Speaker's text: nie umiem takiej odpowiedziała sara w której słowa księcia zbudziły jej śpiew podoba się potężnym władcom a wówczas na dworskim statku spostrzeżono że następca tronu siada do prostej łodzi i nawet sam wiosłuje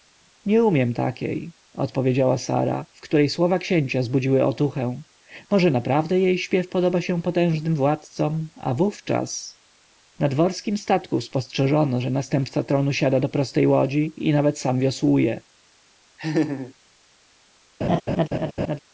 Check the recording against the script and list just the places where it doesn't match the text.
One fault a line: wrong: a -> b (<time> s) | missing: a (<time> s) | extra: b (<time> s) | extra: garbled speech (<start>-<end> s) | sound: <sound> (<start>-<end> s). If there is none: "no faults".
extra: otuchę może naprawdę (4.5 s)
sound: laugh (16.2-16.7 s)
sound: laugh (17.8-18.8 s)